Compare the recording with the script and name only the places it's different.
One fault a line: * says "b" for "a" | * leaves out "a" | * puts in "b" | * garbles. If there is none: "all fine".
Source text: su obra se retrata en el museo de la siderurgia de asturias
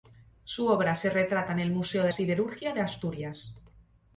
* leaves out "la"